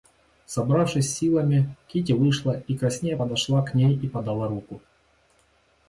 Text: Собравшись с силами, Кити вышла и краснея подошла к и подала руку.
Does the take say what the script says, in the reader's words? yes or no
no